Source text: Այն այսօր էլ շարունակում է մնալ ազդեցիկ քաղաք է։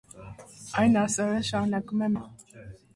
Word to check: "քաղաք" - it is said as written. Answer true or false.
false